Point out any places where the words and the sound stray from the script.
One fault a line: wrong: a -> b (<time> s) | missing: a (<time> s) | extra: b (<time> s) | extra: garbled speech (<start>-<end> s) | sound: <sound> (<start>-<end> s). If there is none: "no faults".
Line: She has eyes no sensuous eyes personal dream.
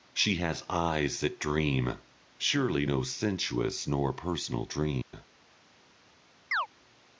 extra: that dream surely (1.2 s)
wrong: eyes -> nor (3.8 s)
sound: dropout (5.0-5.1 s)
sound: chirp (6.5-6.7 s)